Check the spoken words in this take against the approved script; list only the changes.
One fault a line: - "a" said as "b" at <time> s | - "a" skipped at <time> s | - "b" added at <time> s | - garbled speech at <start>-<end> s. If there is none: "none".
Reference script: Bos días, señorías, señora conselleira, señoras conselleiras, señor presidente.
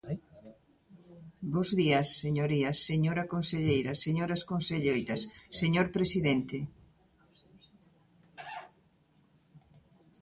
none